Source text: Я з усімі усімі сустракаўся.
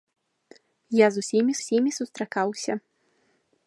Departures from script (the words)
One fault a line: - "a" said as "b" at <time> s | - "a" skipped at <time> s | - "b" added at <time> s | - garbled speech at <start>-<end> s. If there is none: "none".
none